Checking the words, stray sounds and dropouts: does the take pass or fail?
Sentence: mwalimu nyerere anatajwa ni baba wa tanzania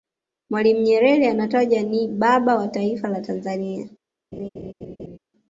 fail